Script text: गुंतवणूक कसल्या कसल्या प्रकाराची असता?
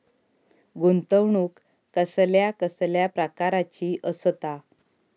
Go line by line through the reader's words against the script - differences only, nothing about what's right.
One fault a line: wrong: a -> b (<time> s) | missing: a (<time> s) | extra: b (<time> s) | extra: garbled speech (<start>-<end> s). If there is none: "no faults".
no faults